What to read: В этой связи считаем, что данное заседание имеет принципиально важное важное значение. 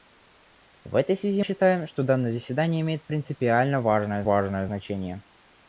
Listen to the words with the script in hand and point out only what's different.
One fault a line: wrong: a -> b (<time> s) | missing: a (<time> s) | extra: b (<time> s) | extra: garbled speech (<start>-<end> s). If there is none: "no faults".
no faults